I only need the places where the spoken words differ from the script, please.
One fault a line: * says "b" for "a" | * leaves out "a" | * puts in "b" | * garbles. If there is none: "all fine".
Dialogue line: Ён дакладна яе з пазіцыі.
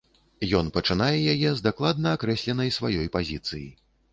* says "пачынае" for "дакладна"
* puts in "дакладна акрэсленай сваёй"